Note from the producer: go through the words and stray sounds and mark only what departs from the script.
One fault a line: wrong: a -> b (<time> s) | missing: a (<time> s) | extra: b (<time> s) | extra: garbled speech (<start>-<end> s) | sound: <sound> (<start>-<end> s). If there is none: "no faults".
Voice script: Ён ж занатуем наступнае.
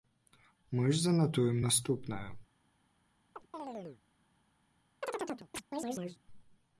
wrong: Ён -> Мы (0.7 s)
sound: chirp (3.4-4.0 s)
sound: chirp (5.0-6.2 s)